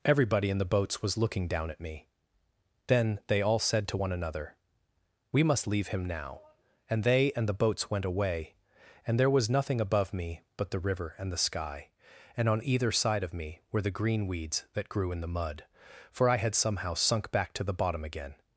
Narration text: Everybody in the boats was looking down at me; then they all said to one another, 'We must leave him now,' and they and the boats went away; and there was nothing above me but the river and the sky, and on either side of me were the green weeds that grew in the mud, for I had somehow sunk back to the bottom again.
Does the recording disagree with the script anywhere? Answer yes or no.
no